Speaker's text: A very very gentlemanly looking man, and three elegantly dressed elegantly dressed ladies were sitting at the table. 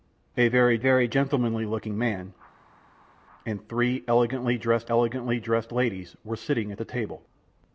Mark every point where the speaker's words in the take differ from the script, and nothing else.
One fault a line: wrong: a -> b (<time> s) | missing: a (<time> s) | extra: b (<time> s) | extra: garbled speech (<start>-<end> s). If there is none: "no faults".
no faults